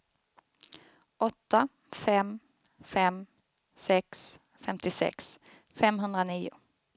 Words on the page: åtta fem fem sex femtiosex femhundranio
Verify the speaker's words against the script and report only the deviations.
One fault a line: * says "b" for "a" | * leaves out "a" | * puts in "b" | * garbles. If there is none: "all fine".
all fine